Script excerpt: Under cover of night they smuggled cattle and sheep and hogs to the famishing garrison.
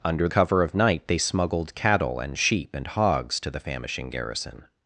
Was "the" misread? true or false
false